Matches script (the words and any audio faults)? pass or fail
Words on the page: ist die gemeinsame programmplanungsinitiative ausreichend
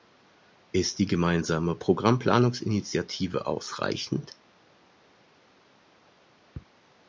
pass